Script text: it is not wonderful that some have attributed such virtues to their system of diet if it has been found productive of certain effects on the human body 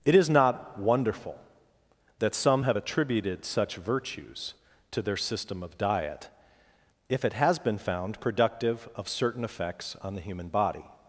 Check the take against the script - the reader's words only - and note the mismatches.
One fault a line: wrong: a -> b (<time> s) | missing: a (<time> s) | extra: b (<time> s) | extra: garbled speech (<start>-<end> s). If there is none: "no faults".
no faults